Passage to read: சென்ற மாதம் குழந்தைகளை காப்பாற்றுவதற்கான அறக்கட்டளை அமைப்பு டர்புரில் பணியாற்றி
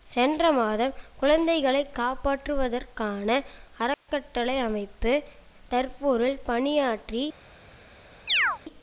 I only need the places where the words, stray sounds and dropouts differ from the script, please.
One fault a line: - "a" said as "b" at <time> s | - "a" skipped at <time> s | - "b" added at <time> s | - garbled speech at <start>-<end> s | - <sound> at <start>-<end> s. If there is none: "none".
- dropout at 3.9-4.1 s
- chirp at 8.3-8.6 s